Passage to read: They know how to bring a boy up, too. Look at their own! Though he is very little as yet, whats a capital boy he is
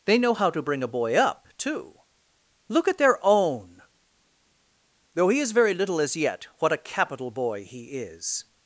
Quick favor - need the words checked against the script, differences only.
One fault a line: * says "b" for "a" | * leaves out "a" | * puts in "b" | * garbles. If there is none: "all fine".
* says "what" for "whats"